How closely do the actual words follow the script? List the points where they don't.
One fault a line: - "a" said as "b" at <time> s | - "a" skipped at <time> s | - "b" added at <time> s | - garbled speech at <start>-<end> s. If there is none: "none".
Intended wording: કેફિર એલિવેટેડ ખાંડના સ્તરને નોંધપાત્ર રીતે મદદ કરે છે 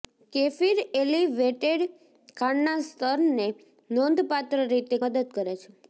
none